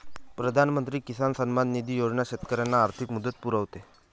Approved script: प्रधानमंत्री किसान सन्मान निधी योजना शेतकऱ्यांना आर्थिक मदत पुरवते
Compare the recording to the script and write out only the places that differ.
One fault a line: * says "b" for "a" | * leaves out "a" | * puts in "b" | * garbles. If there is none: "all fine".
all fine